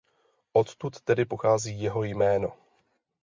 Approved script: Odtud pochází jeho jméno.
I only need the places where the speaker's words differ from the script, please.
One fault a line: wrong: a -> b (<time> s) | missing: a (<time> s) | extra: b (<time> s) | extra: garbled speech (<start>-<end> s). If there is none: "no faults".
extra: tedy (1.0 s)